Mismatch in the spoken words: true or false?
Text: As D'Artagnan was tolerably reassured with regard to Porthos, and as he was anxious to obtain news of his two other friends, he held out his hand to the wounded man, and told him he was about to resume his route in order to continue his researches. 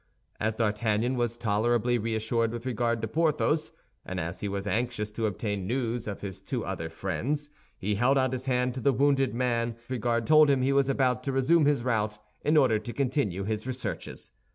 true